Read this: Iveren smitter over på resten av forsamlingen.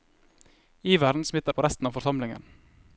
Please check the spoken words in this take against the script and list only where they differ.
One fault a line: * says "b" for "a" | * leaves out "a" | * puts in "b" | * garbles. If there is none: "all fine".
* leaves out "over"